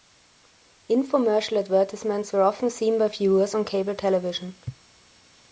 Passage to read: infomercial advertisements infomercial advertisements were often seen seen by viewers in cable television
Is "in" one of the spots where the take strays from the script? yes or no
yes